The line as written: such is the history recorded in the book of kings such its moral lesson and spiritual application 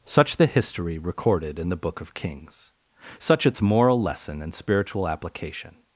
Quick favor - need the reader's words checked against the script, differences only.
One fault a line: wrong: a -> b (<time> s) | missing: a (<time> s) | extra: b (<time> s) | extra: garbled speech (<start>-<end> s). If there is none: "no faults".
missing: is (0.4 s)